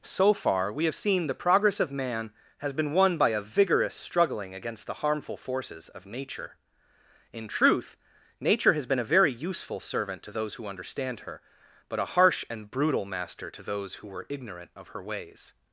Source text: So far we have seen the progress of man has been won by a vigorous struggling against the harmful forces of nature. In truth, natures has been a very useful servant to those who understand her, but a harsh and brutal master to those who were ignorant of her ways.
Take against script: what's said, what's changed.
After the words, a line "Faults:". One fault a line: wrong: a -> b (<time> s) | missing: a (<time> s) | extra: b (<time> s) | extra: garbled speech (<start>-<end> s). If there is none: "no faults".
So far we have seen the progress of man has been won by a vigorous struggling against the harmful forces of nature. In truth, nature has been a very useful servant to those who understand her, but a harsh and brutal master to those who were ignorant of her ways.
Faults:
wrong: natures -> nature (8.4 s)